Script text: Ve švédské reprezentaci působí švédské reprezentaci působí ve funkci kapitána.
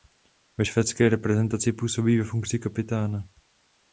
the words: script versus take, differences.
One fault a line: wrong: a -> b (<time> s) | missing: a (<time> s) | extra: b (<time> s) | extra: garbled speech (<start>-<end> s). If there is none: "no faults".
missing: švédské reprezentaci působí (2.2 s)